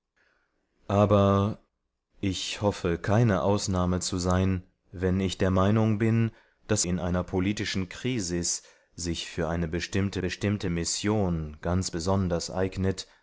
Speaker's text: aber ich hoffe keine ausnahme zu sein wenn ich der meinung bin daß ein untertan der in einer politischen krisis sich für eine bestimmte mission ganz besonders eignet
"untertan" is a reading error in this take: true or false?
true